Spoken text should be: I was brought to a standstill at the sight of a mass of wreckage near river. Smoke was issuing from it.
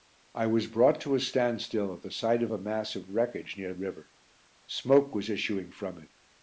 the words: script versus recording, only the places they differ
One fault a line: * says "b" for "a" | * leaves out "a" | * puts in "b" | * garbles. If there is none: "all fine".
all fine